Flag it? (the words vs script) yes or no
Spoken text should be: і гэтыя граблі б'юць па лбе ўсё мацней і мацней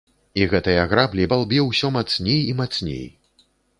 yes